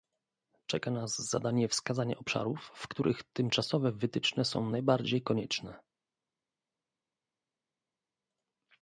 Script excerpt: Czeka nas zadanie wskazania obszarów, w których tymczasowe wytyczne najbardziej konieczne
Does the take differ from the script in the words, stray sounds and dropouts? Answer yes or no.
yes